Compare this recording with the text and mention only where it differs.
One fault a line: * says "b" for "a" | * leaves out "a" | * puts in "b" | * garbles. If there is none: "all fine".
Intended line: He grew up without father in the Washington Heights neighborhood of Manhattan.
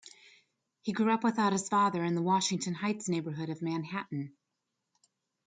* puts in "his"